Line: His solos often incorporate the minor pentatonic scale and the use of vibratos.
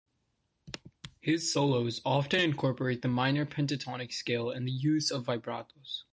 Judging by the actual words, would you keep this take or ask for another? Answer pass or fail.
pass